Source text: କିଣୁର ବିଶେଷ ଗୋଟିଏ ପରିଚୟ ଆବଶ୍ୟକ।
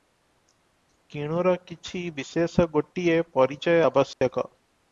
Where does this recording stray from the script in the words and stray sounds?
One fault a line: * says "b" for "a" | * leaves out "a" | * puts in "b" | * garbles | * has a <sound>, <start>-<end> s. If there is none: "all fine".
* puts in "କିଛି"
* has a dropout, 4.1-4.2 s